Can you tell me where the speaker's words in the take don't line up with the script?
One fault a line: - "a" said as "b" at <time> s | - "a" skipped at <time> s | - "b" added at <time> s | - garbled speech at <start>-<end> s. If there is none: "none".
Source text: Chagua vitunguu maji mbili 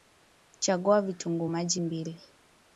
none